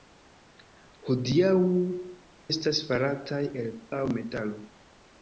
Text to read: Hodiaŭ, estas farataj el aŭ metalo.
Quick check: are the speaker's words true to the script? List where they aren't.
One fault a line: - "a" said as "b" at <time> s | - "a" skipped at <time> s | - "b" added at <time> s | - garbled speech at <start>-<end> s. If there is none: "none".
none